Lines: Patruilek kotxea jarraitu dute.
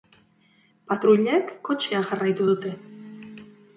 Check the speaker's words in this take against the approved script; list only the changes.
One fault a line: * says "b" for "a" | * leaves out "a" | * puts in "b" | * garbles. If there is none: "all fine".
all fine